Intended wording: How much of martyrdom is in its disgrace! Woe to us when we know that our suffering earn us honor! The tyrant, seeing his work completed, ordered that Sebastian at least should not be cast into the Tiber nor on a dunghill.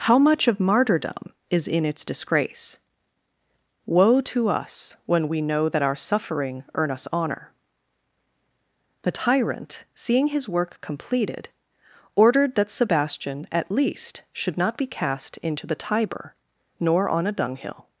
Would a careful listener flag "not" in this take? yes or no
no